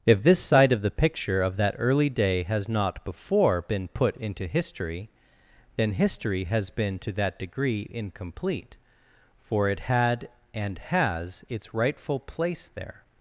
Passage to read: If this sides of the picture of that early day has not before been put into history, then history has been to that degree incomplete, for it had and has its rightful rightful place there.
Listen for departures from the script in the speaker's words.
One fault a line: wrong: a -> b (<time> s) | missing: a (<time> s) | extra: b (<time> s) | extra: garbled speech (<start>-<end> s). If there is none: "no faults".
wrong: sides -> side (0.4 s)
missing: rightful (12.2 s)